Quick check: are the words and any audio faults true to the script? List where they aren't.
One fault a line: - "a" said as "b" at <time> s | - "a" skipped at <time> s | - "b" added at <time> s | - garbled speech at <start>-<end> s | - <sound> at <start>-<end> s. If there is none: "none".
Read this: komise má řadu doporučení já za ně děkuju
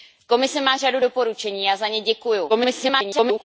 - garbled speech at 2.5-3.4 s